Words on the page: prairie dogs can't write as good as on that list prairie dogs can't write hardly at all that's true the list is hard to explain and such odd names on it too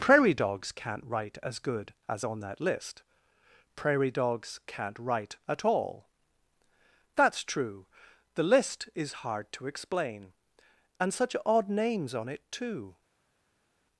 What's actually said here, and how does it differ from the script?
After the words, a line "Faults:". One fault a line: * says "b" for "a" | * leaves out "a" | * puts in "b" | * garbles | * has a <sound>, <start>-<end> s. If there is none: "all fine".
prairie dogs can't write as good as on that list prairie dogs can't write at all that's true the list is hard to explain and such odd names on it too
Faults:
* leaves out "hardly"